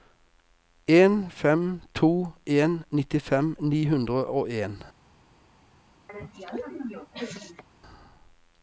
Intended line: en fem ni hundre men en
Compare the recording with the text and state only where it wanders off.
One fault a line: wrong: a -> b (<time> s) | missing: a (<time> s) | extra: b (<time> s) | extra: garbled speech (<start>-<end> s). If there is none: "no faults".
extra: to en nittifem (1.9 s)
wrong: men -> og (4.2 s)